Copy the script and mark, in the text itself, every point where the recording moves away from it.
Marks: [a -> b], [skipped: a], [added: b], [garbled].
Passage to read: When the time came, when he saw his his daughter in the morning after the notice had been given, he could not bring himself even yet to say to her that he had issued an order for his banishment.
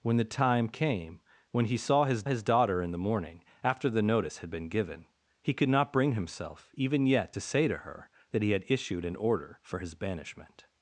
When the time came, when he saw his his daughter in the morning after the notice had been given, he could not bring himself even yet to say to her that he had issued an order for his banishment.